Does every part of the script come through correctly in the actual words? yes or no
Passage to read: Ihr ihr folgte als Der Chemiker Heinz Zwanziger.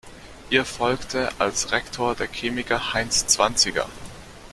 no